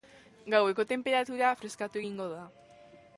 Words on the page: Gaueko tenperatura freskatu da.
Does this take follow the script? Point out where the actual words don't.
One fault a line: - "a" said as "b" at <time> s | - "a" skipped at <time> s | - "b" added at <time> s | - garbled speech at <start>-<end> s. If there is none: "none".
- "egingo" added at 2.0 s